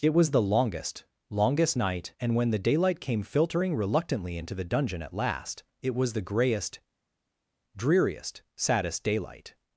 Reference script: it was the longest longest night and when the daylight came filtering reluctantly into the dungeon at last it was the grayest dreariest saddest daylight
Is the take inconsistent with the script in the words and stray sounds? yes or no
no